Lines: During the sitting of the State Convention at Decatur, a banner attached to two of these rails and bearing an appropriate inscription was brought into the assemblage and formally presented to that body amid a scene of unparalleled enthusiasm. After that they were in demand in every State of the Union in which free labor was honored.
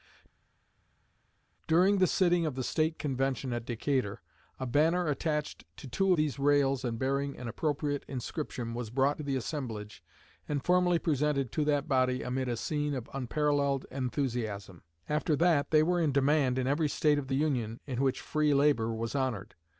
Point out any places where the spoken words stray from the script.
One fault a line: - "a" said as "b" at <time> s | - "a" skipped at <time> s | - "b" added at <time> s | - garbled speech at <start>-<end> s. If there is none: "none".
- "of" skipped at 6.1 s
- "into" skipped at 9.2 s